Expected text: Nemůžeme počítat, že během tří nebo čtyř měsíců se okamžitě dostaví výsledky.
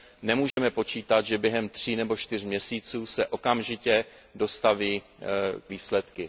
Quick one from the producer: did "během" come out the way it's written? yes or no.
yes